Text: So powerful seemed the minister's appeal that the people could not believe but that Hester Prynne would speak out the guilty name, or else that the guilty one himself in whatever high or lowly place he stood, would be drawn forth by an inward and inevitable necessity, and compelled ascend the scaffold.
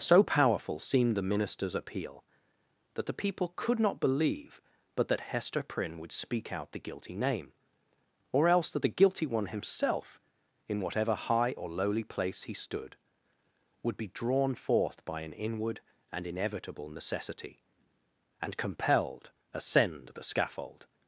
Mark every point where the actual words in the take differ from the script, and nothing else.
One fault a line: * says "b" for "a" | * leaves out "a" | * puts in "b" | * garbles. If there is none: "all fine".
all fine